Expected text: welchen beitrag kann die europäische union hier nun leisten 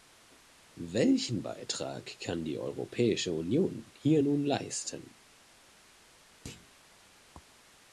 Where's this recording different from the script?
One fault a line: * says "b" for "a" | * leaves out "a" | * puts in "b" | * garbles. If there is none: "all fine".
all fine